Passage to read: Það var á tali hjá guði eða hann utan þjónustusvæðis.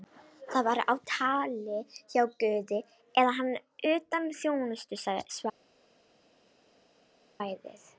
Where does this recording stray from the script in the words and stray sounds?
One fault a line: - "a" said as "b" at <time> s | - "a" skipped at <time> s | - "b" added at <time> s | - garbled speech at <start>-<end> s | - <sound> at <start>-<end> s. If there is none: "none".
none